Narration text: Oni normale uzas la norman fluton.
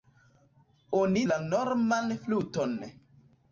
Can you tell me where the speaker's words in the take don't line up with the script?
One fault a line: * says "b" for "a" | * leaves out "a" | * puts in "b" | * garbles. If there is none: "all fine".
* leaves out "normale uzas"